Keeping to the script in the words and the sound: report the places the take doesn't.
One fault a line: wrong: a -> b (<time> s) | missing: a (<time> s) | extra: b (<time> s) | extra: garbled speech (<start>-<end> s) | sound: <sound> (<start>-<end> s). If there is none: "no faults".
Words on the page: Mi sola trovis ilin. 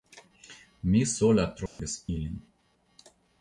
sound: dropout (1.7-1.8 s)